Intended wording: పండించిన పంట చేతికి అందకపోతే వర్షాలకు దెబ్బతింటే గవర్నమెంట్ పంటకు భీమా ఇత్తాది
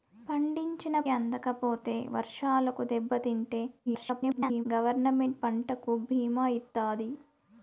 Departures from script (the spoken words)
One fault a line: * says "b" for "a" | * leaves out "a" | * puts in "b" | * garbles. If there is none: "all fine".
* leaves out "పంట చేతికి"
* garbles